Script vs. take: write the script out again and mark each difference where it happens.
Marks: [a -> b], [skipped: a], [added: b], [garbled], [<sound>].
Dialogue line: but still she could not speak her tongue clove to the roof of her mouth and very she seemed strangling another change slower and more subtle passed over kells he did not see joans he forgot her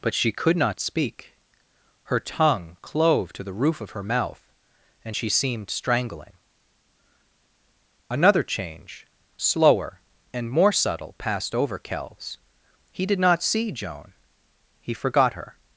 but [skipped: still] she could not speak her tongue clove to the roof of her mouth and [skipped: very] she seemed strangling another change slower and more subtle passed over kells he did not see [joans -> joan] he forgot her